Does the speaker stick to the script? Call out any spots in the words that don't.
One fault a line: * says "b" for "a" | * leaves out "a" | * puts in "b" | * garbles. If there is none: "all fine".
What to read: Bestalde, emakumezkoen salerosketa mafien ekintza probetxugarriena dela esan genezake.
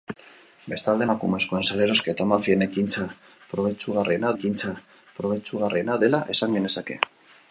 * puts in "ekintza probetxugarriena"